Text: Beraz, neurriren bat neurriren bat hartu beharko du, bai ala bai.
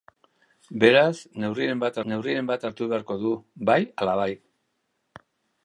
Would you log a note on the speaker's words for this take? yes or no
no